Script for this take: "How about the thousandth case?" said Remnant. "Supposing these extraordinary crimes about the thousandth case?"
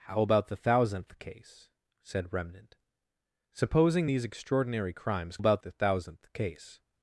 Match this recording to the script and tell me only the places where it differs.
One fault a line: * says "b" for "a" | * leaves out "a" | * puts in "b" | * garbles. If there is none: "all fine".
all fine